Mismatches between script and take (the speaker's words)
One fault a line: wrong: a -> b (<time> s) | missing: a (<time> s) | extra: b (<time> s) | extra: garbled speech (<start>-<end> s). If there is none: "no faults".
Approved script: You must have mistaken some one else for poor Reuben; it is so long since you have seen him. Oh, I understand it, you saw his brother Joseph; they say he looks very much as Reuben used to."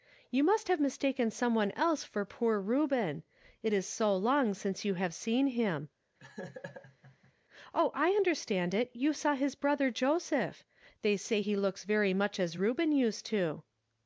no faults